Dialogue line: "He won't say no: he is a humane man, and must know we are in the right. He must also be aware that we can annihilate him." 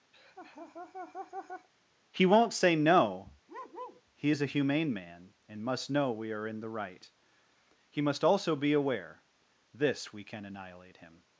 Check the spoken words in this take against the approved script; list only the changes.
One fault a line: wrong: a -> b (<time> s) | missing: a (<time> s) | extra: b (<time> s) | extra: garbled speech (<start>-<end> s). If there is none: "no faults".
wrong: that -> this (9.7 s)